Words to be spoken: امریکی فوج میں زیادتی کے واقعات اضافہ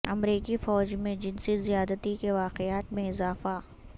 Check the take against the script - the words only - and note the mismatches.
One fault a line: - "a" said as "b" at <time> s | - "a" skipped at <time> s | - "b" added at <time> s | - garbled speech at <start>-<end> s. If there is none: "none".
- "جنسی" added at 1.1 s
- "میں" added at 2.9 s